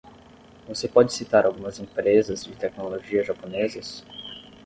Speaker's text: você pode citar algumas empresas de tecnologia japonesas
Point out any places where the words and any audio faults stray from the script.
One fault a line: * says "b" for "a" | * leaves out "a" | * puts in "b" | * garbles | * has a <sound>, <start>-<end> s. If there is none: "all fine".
all fine